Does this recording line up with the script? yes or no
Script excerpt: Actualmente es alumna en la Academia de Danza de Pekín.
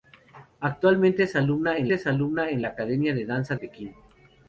no